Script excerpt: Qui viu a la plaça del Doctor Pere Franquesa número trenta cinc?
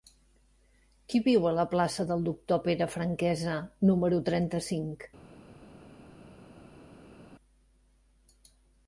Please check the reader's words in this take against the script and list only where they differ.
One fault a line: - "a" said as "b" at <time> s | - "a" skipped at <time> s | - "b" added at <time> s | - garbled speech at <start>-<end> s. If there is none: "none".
none